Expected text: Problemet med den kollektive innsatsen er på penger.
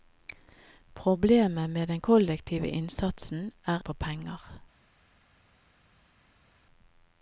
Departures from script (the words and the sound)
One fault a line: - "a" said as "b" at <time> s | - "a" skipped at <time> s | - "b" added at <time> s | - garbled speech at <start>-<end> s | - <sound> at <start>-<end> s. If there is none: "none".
none